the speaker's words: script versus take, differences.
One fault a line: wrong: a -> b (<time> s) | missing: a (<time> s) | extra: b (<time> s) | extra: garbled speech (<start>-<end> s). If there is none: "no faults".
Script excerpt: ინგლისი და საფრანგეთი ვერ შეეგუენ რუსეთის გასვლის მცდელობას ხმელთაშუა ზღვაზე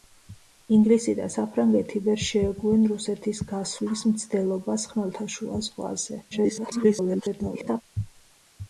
extra: garbled speech (6.3-7.8 s)